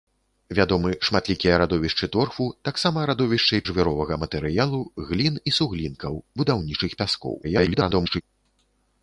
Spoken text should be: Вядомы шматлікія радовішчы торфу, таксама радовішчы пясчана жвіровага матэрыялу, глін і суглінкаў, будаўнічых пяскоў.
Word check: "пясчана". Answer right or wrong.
wrong